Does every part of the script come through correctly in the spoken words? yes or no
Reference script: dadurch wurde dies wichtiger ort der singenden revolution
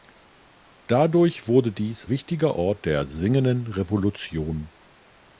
yes